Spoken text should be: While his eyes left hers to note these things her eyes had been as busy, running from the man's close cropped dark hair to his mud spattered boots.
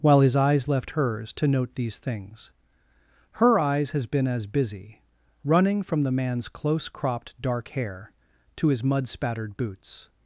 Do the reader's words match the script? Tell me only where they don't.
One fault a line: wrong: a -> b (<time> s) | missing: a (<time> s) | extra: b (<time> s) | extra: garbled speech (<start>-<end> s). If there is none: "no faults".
wrong: had -> has (3.9 s)